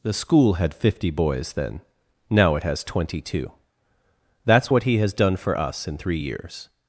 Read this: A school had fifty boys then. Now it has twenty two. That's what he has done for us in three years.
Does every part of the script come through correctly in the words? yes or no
no